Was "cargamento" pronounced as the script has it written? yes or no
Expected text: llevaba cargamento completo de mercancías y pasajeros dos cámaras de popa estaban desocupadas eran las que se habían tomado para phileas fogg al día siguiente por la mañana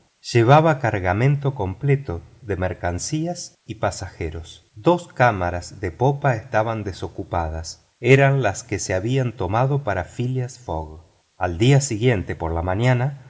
yes